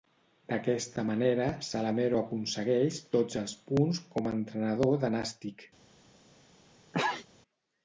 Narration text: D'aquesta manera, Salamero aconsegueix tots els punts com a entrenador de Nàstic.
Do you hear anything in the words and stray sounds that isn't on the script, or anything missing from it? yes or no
yes